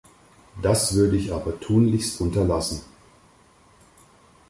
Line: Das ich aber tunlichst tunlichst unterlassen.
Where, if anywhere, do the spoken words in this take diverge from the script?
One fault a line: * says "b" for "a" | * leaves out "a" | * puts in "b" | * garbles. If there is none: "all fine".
* puts in "würde"
* leaves out "tunlichst"